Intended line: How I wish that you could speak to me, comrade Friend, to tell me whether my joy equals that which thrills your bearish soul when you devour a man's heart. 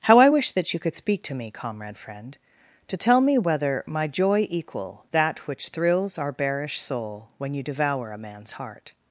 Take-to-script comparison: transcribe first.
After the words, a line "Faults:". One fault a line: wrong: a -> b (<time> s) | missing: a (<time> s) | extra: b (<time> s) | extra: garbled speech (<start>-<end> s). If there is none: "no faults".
How I wish that you could speak to me, comrade Friend, to tell me whether my joy equal that which thrills our bearish soul when you devour a man's heart.
Faults:
wrong: equals -> equal (4.5 s)
wrong: your -> our (6.2 s)